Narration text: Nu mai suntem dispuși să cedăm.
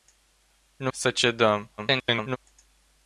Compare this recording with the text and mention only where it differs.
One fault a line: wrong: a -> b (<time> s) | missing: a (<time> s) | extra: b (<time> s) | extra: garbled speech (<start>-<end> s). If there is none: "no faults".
missing: mai suntem dispuși (0.9 s)
extra: garbled speech (1.8-2.4 s)